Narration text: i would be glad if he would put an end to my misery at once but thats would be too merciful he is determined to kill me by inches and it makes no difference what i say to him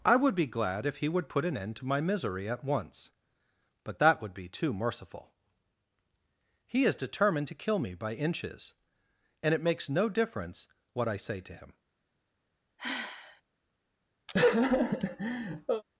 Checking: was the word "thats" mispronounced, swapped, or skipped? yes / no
yes